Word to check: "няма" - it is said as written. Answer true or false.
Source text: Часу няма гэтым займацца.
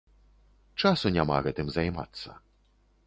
true